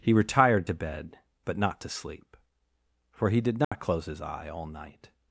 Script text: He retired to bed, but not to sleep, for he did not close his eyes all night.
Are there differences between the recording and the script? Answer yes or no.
yes